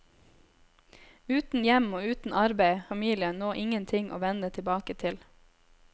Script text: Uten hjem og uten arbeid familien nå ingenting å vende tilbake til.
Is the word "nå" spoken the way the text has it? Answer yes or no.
yes